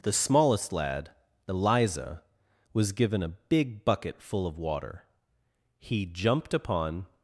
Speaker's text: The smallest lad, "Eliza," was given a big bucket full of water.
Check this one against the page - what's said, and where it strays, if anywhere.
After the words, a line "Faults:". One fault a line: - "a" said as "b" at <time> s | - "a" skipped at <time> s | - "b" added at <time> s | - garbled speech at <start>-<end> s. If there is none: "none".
The smallest lad, "Eliza," was given a big bucket full of water. He jumped upon
Faults:
- "He jumped upon" added at 5.8 s